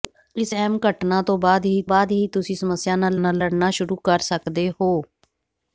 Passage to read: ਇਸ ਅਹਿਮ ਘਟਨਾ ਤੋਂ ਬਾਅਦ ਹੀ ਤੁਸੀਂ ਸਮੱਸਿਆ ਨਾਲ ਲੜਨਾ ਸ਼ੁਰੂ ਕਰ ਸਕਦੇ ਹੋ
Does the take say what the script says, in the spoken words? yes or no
no